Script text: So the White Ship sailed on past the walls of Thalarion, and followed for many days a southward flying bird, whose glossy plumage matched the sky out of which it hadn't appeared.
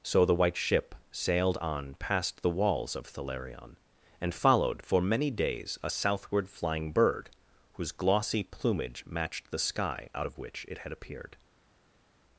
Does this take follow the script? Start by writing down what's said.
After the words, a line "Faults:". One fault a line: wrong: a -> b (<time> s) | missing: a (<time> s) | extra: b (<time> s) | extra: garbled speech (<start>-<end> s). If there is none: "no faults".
So the White Ship sailed on past the walls of Thalarion, and followed for many days a southward flying bird, whose glossy plumage matched the sky out of which it had appeared.
Faults:
wrong: hadn't -> had (10.8 s)